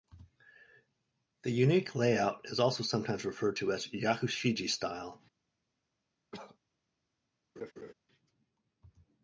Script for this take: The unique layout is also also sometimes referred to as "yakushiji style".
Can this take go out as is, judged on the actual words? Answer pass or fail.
fail